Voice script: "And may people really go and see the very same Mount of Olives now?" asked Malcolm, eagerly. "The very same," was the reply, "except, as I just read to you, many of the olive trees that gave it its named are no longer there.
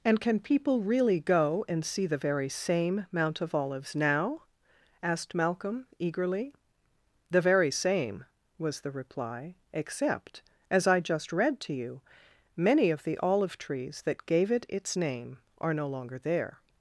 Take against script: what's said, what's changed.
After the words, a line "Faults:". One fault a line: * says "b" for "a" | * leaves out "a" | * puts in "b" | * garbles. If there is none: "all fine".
"And can people really go and see the very same Mount of Olives now?" asked Malcolm, eagerly. "The very same," was the reply, "except, as I just read to you, many of the olive trees that gave it its name are no longer there.
Faults:
* says "can" for "may"
* says "name" for "named"